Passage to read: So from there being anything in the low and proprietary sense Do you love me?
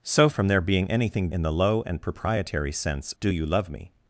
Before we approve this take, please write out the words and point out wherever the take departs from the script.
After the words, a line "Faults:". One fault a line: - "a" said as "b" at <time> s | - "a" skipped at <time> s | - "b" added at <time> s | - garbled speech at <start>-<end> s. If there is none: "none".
So from there being anything in the low and proprietary sense Do you love me?
Faults:
none